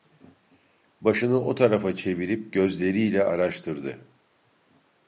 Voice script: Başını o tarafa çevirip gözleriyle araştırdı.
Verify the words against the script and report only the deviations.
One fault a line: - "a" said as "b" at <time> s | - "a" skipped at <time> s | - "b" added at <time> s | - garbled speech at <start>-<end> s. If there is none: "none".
none